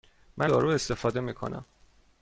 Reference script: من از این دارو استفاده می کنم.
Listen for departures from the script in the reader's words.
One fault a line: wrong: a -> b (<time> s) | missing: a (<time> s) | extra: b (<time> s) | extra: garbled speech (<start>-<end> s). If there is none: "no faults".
missing: از این (0.5 s)